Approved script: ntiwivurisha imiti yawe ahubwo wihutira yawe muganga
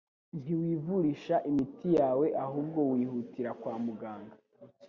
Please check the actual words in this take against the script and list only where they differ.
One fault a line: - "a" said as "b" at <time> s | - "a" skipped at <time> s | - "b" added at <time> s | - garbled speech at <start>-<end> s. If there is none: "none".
- "yawe" said as "kwa" at 3.6 s